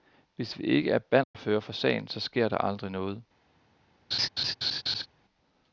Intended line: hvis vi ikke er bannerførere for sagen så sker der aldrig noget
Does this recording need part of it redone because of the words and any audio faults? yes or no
yes